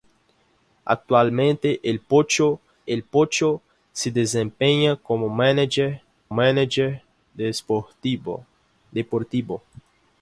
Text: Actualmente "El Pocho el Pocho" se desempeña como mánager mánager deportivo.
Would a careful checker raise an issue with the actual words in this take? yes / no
no